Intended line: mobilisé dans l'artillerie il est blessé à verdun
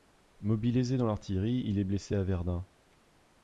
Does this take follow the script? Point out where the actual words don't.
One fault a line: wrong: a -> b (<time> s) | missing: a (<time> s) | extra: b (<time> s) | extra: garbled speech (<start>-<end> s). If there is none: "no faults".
no faults